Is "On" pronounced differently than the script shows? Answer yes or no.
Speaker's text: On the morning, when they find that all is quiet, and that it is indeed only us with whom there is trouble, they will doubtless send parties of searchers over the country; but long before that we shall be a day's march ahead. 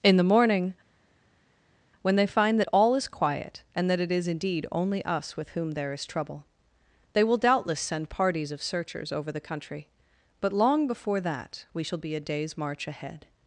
yes